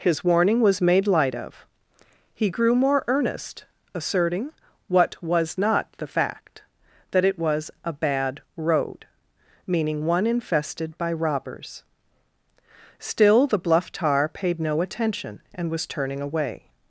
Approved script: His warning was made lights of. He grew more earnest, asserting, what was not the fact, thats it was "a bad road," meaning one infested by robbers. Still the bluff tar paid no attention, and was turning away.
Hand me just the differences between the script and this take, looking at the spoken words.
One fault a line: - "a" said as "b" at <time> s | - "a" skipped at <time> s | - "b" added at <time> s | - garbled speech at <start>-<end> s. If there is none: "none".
- "lights" said as "light" at 1.1 s
- "thats" said as "that" at 7.1 s